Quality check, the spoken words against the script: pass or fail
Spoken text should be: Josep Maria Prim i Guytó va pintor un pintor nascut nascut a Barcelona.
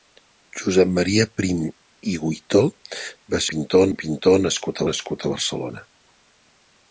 pass